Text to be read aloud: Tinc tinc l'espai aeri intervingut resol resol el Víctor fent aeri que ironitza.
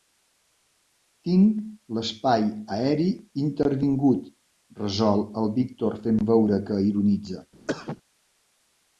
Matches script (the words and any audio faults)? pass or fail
fail